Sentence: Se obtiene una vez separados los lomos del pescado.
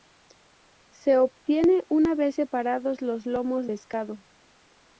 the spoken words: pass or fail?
fail